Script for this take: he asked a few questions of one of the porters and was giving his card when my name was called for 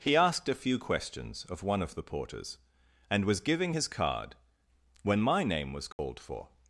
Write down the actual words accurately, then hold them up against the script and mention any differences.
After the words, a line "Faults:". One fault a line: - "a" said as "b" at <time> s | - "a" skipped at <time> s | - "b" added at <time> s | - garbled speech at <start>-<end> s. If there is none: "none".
he asked a few questions of one of the porters and was giving his card when my name was called for
Faults:
none